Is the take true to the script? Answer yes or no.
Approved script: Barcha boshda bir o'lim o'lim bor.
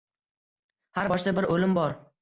no